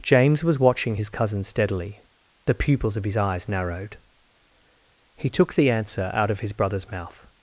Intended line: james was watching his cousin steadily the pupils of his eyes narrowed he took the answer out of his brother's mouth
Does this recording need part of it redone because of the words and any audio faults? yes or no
no